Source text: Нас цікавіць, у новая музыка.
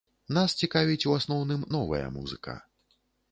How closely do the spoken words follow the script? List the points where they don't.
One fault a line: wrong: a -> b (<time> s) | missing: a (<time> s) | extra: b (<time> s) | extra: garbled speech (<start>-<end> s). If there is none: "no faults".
extra: асноўным (1.2 s)